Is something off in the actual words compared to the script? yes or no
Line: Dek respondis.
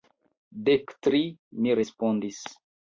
yes